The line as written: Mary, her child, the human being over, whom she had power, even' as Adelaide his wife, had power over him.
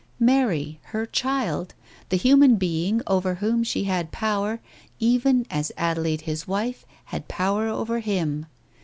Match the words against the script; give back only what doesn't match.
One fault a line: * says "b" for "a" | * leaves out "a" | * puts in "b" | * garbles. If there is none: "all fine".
all fine